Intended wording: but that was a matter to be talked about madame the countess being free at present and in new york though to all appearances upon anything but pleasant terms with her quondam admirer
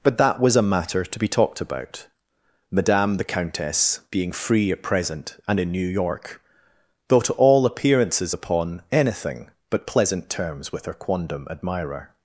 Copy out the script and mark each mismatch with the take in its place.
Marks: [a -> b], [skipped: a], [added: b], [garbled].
but that was a matter to be talked about madame the countess being free at present and in new york though to all appearances upon anything but pleasant terms with her quondam admirer